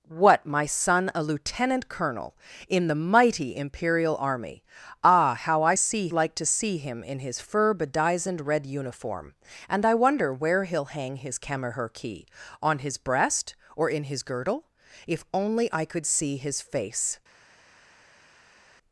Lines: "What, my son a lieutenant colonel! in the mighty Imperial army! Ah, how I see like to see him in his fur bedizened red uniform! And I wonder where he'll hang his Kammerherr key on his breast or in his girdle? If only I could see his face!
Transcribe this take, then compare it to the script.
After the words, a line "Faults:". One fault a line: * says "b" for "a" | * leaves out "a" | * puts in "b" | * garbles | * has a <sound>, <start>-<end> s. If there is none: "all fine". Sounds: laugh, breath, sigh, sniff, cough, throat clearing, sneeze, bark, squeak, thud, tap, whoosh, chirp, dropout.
"What, my son a lieutenant colonel! in the mighty Imperial army! Ah, how I see like to see him in his fur bedizened red uniform! And I wonder where he'll hang his Kammerherr key on his breast or in his girdle? If only I could see his face!
Faults:
all fine